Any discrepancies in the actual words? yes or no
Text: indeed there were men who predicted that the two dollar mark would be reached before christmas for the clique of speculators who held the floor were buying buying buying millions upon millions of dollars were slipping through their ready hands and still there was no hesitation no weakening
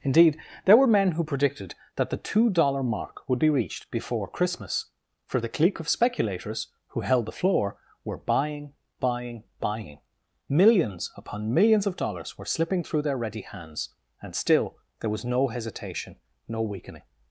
no